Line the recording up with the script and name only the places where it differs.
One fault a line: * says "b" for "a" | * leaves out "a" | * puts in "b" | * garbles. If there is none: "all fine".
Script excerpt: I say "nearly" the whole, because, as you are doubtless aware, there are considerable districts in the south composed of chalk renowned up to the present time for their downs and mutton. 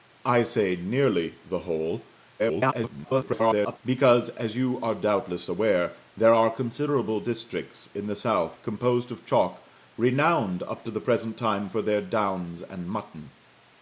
* garbles